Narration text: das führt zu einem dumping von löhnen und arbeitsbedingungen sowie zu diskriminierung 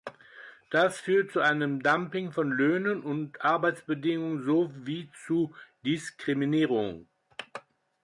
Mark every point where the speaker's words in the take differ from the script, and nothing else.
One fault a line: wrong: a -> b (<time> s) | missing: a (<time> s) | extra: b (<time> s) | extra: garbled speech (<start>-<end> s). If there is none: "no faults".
no faults